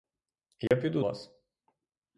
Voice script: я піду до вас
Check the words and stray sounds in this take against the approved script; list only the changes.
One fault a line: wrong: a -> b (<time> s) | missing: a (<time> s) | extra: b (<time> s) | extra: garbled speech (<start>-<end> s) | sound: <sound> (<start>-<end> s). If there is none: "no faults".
sound: dropout (0.7-0.7 s)
missing: до (1.0 s)